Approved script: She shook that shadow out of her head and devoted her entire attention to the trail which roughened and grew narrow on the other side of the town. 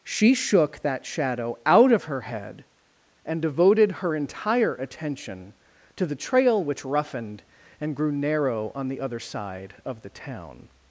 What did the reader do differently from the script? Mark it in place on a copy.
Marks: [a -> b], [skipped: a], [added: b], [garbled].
She shook that shadow out of her head and devoted her entire attention to the trail which roughened and grew narrow on the other side of the town.